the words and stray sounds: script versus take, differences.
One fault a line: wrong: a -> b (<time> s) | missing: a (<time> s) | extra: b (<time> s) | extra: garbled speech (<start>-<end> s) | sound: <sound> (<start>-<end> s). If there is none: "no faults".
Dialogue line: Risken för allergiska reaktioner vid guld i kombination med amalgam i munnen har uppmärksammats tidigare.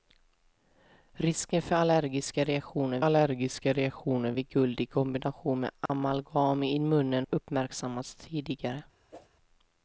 extra: allergiska reaktioner (3.0 s)
sound: dropout (5.9-5.9 s)
missing: har (7.3 s)
sound: whoosh (9.1-9.3 s)